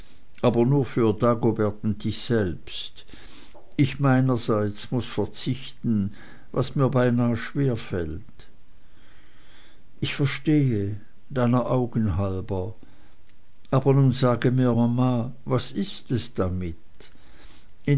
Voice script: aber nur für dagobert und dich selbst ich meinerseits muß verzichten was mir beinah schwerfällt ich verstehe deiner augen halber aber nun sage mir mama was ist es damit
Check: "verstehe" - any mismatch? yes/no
no